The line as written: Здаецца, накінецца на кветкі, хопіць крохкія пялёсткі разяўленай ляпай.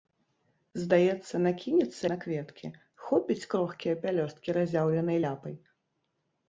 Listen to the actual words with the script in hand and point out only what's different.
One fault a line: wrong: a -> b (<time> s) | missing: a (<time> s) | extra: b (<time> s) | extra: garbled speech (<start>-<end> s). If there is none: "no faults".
no faults